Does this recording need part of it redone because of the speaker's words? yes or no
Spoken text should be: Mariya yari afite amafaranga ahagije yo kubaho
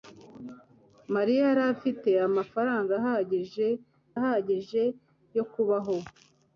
yes